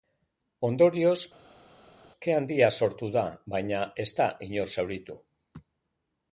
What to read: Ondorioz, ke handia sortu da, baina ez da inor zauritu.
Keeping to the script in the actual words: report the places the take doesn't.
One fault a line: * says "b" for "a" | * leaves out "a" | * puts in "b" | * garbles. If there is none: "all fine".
all fine